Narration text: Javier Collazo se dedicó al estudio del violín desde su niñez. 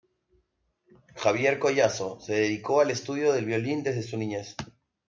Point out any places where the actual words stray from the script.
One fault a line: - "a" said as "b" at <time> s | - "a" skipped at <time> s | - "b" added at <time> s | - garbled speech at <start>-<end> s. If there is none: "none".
none